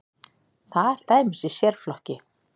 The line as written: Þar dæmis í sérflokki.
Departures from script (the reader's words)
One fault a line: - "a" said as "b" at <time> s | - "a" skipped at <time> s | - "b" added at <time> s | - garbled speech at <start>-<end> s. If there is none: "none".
none